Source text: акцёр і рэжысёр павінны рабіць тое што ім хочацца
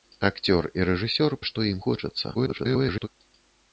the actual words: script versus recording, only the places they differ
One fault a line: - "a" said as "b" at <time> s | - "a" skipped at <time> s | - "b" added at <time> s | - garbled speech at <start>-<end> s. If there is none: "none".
- "павінны рабіць тое" skipped at 1.4 s
- garbled speech at 2.3-3.1 s